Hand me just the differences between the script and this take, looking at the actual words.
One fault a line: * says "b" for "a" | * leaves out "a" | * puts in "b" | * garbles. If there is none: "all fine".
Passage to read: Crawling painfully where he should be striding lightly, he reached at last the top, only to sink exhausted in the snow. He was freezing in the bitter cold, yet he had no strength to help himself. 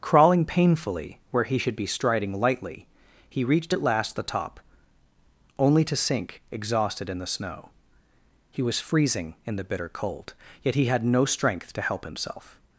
all fine